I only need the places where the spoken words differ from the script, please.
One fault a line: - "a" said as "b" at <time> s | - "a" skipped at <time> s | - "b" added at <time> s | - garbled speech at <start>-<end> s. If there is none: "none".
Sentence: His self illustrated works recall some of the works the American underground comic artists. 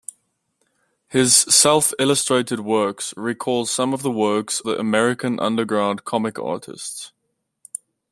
none